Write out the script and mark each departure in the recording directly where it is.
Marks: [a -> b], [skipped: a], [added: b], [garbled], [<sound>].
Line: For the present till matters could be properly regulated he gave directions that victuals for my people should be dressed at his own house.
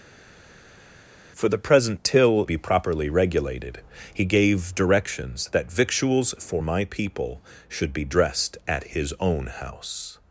For the present till [skipped: matters could] be properly regulated he gave directions that victuals for my people should be dressed at his own house.